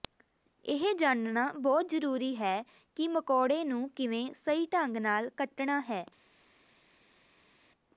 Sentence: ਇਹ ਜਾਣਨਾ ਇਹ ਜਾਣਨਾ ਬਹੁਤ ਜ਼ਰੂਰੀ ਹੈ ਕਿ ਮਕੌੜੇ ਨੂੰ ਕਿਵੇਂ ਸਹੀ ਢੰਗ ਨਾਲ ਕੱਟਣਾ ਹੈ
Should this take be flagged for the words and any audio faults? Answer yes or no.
yes